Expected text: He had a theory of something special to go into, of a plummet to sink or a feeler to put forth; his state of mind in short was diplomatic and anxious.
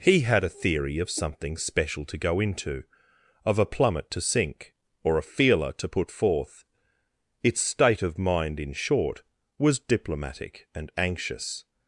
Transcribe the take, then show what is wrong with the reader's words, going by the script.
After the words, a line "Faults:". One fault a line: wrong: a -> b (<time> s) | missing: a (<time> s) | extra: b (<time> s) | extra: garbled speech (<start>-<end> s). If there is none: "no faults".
He had a theory of something special to go into, of a plummet to sink or a feeler to put forth; its state of mind in short was diplomatic and anxious.
Faults:
wrong: his -> its (7.4 s)